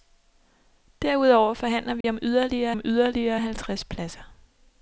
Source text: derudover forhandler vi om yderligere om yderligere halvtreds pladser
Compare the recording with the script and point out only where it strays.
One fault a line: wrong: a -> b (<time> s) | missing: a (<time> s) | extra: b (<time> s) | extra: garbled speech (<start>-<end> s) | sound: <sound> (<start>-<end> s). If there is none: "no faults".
sound: dropout (2.0-2.0 s)